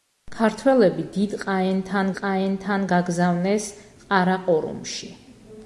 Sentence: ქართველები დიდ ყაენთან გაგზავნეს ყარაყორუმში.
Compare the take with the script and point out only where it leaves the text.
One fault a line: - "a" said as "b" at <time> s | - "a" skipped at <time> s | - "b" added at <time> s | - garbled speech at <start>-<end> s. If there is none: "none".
- "ყაენთან" added at 2.2 s